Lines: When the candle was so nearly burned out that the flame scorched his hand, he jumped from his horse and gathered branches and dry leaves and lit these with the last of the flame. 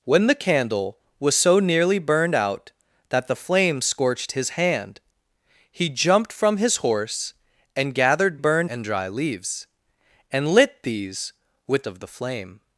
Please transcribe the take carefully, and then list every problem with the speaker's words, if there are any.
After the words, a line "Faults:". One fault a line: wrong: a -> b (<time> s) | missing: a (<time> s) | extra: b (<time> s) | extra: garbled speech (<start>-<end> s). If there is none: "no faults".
When the candle was so nearly burned out that the flame scorched his hand, he jumped from his horse and gathered burned and dry leaves and lit these with of the flame.
Faults:
wrong: branches -> burned (8.3 s)
missing: the last (11.9 s)